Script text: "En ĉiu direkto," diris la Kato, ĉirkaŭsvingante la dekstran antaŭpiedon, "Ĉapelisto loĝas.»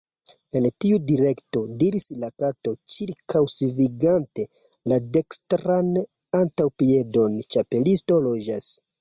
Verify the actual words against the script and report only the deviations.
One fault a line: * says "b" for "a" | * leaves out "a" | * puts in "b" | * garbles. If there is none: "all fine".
* says "tiu" for "ĉiu"